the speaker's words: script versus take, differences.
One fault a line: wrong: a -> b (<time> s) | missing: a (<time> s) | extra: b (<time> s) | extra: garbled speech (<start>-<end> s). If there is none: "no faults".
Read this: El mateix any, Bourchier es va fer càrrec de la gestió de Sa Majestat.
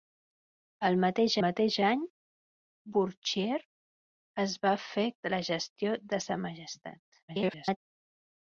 extra: mateix (1.4 s)
missing: càrrec (5.0 s)
extra: garbled speech (7.3-7.8 s)